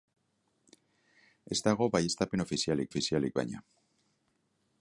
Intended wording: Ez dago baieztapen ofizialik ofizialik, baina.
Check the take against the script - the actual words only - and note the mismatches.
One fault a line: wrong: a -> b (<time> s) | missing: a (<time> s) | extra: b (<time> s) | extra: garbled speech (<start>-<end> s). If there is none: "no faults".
no faults